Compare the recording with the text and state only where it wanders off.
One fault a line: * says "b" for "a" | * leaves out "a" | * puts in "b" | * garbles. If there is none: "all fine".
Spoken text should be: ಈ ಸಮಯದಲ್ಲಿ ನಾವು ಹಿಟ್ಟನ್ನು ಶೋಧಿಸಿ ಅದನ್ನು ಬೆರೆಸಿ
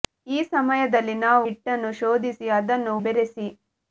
all fine